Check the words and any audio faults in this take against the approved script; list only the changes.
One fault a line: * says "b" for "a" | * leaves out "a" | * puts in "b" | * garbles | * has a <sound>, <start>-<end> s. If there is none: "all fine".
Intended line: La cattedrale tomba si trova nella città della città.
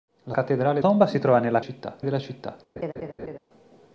* has a laugh, 2.8-3.4 s